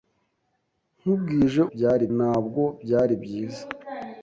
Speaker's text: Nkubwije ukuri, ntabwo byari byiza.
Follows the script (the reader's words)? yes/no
no